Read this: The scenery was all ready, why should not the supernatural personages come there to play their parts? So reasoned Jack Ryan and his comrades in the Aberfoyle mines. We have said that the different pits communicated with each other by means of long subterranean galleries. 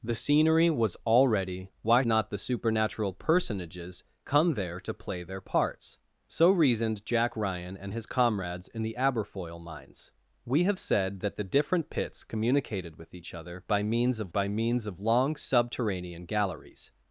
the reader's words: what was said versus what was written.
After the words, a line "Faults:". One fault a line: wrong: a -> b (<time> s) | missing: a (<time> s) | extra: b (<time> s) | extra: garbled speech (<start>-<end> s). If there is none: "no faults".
The scenery was all ready, why not the supernatural personages come there to play their parts? So reasoned Jack Ryan and his comrades in the Aberfoyle mines. We have said that the different pits communicated with each other by means of by means of long subterranean galleries.
Faults:
missing: should (2.0 s)
extra: by means of (14.3 s)